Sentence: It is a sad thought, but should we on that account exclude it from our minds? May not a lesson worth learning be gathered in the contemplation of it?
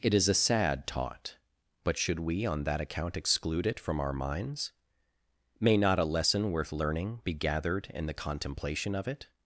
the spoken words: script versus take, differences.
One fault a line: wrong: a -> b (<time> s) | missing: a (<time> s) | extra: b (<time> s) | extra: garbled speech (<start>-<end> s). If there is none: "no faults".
wrong: thought -> taught (0.9 s)